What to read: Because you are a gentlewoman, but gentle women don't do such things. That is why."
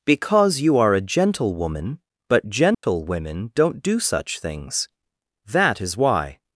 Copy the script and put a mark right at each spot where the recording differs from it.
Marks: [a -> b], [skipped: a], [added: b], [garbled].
Because you are a gentlewoman, but gentle women don't do such things. That is why."